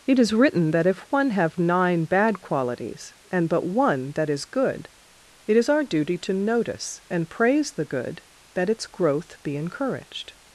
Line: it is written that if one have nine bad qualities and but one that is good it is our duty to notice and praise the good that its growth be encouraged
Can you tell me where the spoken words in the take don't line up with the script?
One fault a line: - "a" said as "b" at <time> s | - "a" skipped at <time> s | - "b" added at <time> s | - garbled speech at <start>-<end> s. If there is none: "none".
none